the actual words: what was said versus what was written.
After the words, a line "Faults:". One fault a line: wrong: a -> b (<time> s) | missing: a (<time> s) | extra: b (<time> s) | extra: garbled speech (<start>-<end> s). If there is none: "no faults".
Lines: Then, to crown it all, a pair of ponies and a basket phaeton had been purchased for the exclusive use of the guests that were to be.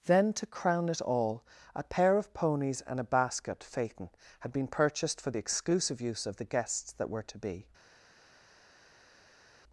Then, to crown it all, a pair of ponies and a basket phaeton had been purchased for the exclusive use of the guests that were to be.
Faults:
no faults